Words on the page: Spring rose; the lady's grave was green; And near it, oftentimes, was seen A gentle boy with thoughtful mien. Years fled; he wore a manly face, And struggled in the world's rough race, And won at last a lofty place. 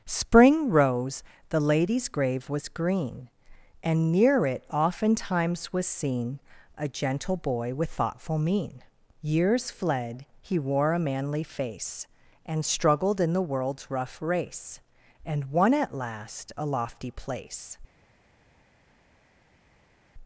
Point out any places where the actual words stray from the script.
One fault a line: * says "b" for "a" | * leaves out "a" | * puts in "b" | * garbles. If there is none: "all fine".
all fine